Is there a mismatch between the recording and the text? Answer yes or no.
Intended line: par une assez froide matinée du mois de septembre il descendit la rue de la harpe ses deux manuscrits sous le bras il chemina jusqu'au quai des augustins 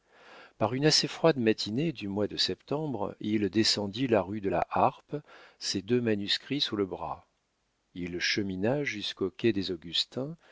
no